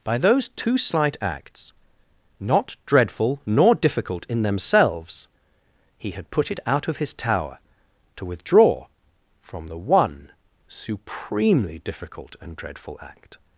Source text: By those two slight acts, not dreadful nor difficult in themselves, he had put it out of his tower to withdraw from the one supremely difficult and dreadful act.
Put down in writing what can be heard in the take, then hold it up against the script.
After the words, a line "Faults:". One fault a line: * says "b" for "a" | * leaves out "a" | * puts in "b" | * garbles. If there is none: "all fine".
By those two slight acts, not dreadful nor difficult in themselves, he had put it out of his tower to withdraw from the one supremely difficult and dreadful act.
Faults:
all fine